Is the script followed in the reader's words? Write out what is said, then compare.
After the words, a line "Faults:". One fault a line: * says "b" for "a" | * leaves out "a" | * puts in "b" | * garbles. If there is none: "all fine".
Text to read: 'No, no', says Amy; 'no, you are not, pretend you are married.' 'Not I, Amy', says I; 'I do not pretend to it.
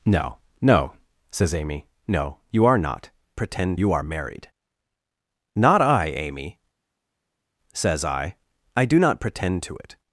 'No, no', says Amy; 'no, you are not, pretend you are married.' 'Not I, Amy', says I; 'I do not pretend to it.
Faults:
all fine